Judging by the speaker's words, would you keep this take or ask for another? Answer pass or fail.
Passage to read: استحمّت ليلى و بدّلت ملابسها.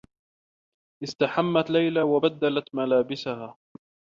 pass